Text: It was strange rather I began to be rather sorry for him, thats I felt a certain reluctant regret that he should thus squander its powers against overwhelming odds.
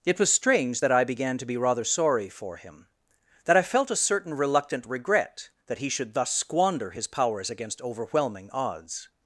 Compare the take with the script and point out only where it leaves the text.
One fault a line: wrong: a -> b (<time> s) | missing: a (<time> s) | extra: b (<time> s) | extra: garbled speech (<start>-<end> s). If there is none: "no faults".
wrong: rather -> that (0.8 s)
wrong: thats -> that (3.4 s)
wrong: its -> his (6.9 s)